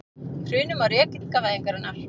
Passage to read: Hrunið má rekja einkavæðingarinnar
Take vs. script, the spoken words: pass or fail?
pass